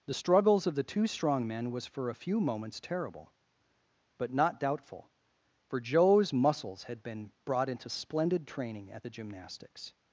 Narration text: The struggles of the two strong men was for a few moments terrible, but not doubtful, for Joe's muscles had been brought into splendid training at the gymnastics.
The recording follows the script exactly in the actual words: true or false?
true